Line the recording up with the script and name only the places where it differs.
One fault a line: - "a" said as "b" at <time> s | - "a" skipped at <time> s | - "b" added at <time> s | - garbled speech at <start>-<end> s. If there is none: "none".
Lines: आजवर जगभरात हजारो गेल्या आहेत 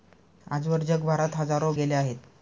none